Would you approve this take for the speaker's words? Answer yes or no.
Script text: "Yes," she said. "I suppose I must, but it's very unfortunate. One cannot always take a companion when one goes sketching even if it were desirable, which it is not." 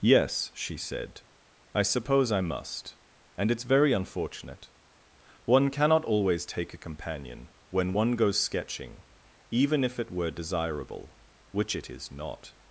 no